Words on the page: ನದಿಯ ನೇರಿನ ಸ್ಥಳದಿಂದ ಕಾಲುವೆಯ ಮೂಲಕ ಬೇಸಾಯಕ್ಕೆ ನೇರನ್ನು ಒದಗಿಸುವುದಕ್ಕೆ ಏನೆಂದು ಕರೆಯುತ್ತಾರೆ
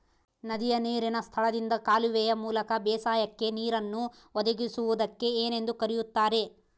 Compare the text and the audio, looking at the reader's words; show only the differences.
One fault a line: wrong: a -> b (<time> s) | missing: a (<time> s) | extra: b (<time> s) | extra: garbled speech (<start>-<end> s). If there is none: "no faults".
no faults